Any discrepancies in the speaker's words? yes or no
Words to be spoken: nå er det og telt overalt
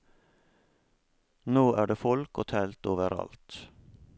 yes